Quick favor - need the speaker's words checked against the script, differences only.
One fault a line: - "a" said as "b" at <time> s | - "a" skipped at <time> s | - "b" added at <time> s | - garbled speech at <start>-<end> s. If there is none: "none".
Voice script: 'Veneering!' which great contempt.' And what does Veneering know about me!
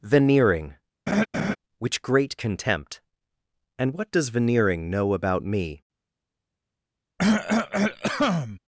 none